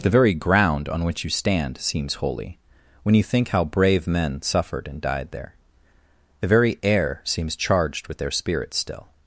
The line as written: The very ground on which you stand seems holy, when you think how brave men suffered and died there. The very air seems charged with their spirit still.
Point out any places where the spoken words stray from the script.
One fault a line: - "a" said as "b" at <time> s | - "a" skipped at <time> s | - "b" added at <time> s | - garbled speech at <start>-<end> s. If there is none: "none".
none